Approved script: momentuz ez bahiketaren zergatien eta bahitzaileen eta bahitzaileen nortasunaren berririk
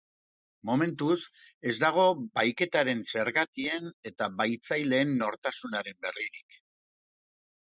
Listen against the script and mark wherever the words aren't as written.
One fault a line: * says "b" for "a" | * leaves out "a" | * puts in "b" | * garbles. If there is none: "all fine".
* puts in "dago"
* leaves out "eta bahitzaileen"